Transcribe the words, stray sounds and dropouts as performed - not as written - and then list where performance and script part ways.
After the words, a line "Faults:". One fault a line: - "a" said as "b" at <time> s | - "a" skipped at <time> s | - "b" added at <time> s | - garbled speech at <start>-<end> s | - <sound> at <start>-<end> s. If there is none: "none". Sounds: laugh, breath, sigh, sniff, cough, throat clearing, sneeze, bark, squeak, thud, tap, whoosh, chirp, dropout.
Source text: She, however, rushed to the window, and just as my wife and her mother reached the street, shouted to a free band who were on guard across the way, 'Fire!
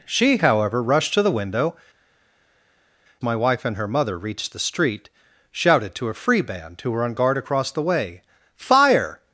She, however, rushed to the window, my wife and her mother reached the street, shouted to a free band who were on guard across the way, 'Fire!
Faults:
- "and just as" skipped at 1.8 s